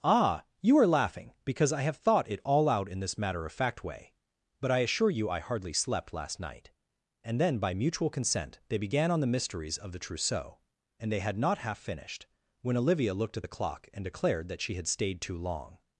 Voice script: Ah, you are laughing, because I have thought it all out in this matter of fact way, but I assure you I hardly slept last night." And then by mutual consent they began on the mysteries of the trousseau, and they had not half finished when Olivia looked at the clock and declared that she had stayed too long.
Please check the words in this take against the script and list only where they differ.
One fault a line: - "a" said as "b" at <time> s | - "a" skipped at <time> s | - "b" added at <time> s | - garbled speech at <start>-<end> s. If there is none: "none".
none